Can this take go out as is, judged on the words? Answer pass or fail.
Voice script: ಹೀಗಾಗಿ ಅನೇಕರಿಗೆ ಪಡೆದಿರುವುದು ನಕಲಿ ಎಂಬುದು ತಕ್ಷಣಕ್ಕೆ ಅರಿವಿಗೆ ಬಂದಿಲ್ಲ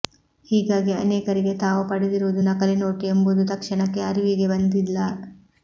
fail